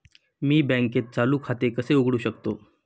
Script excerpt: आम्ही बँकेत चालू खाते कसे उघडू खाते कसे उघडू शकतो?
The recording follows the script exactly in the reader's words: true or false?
false